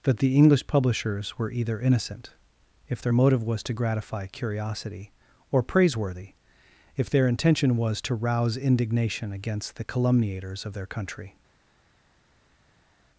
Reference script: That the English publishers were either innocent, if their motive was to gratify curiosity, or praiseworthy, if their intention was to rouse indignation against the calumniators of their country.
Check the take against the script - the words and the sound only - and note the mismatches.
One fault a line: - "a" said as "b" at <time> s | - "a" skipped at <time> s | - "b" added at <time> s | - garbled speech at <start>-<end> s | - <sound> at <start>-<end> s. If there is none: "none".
none